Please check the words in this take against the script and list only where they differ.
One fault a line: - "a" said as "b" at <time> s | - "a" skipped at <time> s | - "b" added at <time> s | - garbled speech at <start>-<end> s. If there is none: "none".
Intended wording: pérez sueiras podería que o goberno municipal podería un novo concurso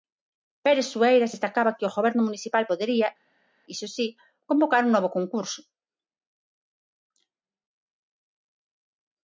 - "podería" said as "destacaba" at 1.3 s
- "iso si convocar" added at 3.7 s